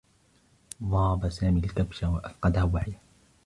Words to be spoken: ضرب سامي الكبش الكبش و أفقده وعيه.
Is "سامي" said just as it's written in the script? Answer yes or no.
yes